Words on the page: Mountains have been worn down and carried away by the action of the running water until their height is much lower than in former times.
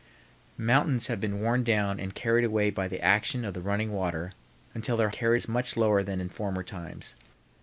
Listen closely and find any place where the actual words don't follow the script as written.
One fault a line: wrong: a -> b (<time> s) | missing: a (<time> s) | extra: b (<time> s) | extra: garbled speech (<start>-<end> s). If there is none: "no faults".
wrong: height -> carried (5.1 s)